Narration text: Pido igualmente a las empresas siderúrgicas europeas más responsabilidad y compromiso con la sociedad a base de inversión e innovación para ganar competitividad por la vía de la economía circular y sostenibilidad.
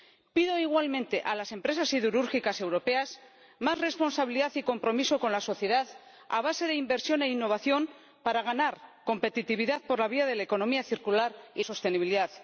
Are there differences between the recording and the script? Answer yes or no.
no